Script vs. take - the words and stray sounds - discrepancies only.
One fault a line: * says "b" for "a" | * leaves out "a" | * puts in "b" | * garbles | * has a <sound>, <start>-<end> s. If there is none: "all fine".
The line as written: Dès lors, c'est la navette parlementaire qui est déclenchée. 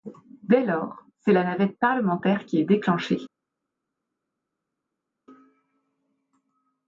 all fine